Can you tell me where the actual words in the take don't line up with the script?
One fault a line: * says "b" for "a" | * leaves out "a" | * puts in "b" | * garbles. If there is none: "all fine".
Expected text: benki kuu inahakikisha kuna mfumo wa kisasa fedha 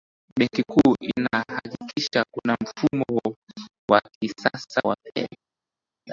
* puts in "wa"